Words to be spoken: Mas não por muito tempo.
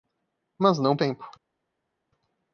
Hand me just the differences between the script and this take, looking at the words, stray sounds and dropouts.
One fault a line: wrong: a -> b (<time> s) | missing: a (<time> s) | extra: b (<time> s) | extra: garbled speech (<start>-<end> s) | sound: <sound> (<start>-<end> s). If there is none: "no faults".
missing: por muito (1.0 s)